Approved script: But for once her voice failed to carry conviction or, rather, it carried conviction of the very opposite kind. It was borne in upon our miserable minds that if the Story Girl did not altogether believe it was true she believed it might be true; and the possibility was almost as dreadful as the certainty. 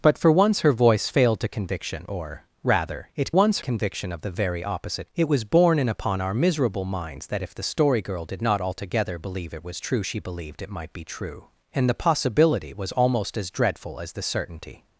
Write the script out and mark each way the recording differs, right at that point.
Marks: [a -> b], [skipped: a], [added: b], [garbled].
But for once her voice failed to [skipped: carry] conviction or, rather, it [carried -> once] conviction of the very opposite [skipped: kind.] It was borne in upon our miserable minds that if the Story Girl did not altogether believe it was true she believed it might be true; and the possibility was almost as dreadful as the certainty.